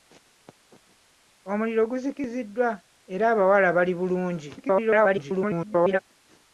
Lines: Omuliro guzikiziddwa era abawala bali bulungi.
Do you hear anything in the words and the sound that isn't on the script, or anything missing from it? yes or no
yes